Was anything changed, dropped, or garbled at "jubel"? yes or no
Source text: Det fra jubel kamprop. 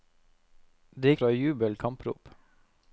no